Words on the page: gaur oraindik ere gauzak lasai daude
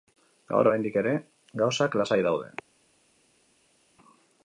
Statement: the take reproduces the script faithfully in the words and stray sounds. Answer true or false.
true